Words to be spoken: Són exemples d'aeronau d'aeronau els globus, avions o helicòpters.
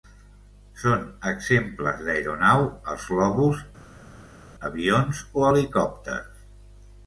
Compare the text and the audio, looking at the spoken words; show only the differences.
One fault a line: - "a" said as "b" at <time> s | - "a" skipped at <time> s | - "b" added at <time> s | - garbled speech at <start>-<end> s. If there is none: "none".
- "d'aeronau" skipped at 2.6 s